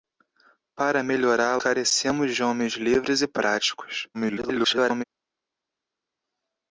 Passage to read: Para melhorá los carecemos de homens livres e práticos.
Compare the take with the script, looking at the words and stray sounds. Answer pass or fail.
fail